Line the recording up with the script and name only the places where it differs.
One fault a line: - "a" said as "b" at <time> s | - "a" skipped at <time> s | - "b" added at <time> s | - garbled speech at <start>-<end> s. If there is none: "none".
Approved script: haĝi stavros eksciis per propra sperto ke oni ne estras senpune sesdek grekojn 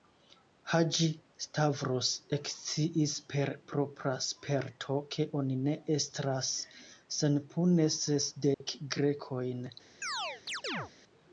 none